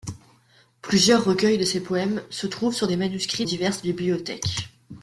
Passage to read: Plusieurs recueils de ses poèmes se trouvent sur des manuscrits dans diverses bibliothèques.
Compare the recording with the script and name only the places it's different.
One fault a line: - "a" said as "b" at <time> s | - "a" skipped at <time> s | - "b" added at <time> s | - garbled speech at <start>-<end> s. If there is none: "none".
- "dans" skipped at 3.5 s